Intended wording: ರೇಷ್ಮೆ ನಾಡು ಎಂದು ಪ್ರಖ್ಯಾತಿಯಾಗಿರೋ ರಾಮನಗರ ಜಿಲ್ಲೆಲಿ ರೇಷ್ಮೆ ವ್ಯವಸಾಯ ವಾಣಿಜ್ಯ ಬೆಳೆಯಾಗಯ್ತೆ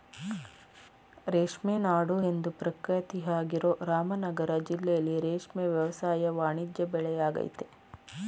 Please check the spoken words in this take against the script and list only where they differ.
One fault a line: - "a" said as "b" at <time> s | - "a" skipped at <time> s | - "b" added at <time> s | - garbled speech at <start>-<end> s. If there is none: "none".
none